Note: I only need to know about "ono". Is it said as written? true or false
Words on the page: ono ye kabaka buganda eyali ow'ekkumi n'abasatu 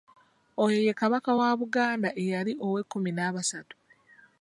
false